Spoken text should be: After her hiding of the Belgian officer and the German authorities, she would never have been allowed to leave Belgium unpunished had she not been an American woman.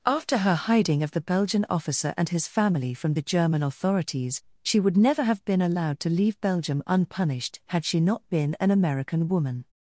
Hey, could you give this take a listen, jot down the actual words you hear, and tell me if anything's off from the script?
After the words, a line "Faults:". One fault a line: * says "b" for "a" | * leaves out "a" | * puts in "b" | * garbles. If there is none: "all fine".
After her hiding of the Belgian officer and his family from the German authorities, she would never have been allowed to leave Belgium unpunished had she not been an American woman.
Faults:
* puts in "his family from"